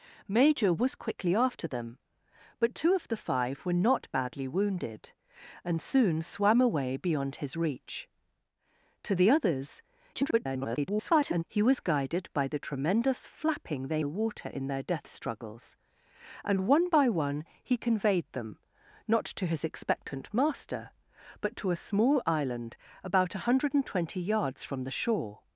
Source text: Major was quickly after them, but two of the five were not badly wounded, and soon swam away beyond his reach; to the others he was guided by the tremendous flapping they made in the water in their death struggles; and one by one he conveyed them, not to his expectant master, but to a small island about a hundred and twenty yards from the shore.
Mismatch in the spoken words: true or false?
true